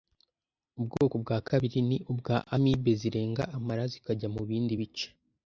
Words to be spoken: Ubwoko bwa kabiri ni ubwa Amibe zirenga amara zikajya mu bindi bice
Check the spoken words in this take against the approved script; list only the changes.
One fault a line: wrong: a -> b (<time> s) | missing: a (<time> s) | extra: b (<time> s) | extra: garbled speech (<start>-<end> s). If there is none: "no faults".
no faults